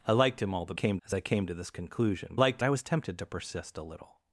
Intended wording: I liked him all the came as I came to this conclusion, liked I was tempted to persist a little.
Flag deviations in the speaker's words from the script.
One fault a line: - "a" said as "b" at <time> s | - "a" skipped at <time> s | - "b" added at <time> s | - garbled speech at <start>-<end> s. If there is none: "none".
none